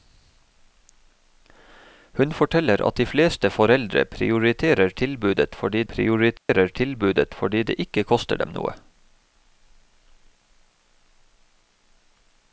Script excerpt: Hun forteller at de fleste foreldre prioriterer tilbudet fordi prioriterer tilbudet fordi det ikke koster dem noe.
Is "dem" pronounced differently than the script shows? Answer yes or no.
no